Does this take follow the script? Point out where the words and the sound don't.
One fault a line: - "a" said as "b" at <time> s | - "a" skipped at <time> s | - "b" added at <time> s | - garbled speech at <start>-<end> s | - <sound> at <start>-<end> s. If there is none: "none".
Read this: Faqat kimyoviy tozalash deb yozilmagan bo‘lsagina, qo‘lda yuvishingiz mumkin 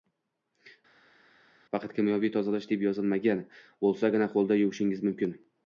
none